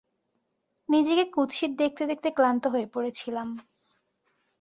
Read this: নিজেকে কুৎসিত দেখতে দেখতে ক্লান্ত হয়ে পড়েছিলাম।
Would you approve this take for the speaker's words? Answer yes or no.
yes